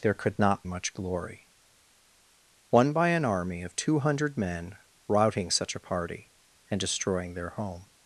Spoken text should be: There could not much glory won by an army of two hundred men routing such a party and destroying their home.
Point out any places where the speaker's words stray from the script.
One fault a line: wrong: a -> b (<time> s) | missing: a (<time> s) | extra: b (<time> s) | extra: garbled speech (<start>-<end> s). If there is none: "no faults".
no faults